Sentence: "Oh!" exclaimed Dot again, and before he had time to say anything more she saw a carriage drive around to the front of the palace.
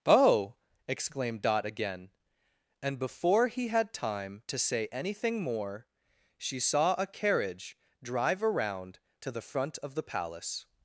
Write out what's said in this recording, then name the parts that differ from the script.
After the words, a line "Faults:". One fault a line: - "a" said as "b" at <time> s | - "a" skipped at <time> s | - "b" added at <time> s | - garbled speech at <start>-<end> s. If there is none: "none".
"Oh!" exclaimed Dot again, and before he had time to say anything more she saw a carriage drive around to the front of the palace.
Faults:
none